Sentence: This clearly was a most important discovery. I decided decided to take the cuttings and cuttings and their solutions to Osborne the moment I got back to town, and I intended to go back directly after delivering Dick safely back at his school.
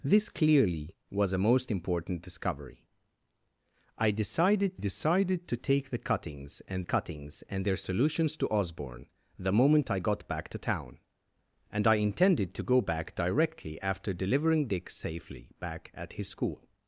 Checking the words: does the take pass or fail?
pass